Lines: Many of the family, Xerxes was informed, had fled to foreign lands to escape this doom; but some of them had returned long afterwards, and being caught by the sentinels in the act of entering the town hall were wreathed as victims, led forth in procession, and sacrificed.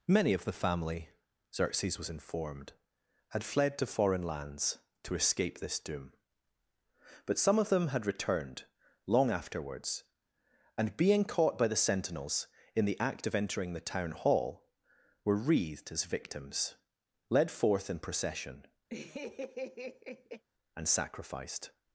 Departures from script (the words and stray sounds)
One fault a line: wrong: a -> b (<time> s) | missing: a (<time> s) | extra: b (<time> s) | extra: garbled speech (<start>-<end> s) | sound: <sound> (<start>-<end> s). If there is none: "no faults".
sound: laugh (18.9-20.4 s)